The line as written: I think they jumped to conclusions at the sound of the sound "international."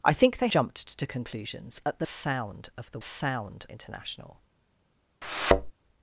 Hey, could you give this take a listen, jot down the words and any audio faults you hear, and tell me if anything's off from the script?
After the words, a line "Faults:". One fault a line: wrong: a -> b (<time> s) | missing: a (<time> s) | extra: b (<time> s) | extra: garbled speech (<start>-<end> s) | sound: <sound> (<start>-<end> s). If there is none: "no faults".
I think they jumped to conclusions at the sound of the sound "international."
Faults:
sound: thud (5.2-5.7 s)